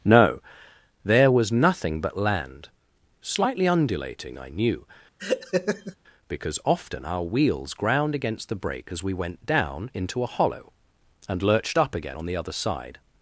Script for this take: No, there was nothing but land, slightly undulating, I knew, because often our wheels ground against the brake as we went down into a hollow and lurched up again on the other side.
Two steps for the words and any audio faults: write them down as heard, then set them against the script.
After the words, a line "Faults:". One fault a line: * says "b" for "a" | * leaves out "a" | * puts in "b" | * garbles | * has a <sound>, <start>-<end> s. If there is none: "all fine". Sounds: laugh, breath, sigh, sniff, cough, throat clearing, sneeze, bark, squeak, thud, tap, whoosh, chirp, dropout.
No, there was nothing but land, slightly undulating, I knew, because often our wheels ground against the brake as we went down into a hollow and lurched up again on the other side.
Faults:
* has a laugh, 5.2-6.0 s